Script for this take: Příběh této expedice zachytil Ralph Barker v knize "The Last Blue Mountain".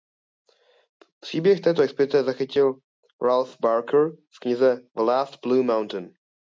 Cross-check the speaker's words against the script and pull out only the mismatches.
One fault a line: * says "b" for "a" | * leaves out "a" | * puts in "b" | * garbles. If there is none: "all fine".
all fine